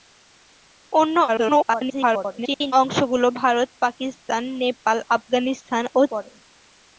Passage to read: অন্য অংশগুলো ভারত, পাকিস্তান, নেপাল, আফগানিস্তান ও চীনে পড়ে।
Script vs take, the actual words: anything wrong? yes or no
yes